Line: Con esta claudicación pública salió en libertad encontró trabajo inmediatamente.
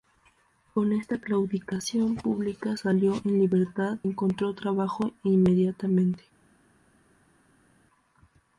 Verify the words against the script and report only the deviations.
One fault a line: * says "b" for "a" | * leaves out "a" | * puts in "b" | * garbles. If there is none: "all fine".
all fine